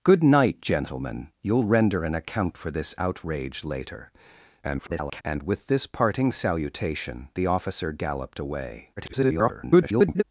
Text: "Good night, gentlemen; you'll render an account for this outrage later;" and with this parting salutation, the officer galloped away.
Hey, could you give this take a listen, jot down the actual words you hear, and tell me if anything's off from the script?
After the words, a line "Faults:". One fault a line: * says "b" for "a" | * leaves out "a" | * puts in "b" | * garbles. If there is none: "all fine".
"Good night, gentlemen; you'll render an account for this outrage later;" [garbled] and with this parting salutation, the officer galloped away. [garbled]
Faults:
* garbles
* garbles